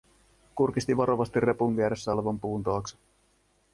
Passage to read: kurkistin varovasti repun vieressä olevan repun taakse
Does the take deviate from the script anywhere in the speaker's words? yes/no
yes